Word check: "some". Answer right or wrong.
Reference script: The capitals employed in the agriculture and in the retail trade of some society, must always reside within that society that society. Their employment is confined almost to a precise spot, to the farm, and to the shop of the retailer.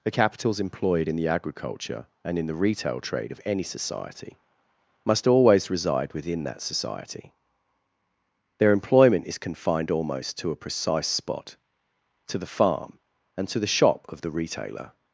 wrong